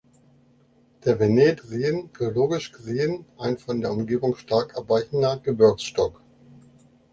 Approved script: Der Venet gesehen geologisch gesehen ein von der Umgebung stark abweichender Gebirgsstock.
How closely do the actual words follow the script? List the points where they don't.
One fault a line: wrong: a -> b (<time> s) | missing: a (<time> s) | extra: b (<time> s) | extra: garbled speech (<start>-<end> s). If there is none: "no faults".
no faults